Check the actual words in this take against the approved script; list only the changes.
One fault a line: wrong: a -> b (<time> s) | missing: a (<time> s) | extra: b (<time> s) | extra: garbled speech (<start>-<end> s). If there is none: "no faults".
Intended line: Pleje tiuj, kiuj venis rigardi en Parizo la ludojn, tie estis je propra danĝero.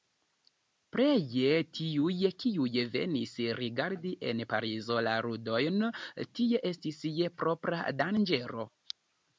no faults